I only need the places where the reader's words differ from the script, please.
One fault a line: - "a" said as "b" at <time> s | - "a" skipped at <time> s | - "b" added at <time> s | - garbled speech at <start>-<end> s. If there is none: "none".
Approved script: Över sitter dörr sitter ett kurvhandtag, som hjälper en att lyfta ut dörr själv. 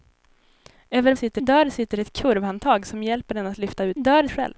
none